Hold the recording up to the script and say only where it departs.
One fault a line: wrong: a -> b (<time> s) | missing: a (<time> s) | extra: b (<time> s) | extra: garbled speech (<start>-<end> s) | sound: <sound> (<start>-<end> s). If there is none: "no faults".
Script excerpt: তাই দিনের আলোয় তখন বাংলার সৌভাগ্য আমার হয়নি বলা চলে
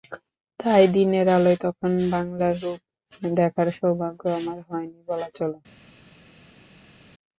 extra: রূপ দেখার (2.6 s)